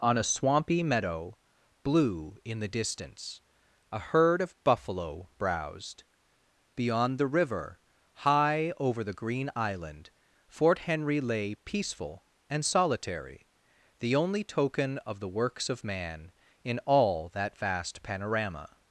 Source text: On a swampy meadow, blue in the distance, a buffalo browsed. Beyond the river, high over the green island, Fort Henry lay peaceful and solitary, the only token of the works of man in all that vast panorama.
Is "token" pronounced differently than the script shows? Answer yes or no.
no